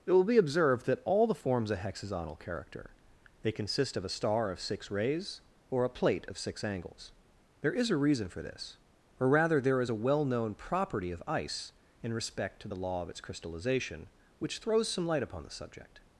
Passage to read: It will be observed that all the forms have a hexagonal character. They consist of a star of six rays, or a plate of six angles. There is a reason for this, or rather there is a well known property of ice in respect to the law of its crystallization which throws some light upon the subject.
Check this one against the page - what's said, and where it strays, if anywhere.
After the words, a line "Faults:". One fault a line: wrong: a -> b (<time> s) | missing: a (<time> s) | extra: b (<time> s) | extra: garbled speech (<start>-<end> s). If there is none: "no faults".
It will be observed that all the forms a hexagonal character. They consist of a star of six rays, or a plate of six angles. There is a reason for this, or rather there is a well known property of ice in respect to the law of its crystallization which throws some light upon the subject.
Faults:
missing: have (1.7 s)